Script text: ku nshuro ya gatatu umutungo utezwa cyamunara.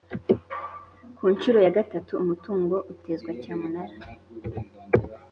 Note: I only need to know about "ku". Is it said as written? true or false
true